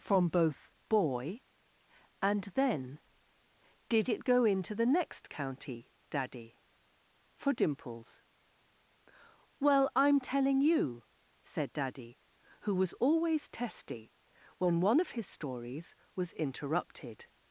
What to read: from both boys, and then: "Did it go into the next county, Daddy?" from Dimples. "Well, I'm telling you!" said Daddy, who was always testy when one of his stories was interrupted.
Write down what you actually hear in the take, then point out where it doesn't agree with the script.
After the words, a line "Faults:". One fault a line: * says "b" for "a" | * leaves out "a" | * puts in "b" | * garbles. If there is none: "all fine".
from both boy, and then: "Did it go into the next county, Daddy?" for Dimples. "Well, I'm telling you!" said Daddy, who was always testy when one of his stories was interrupted.
Faults:
* says "boy" for "boys"
* says "for" for "from"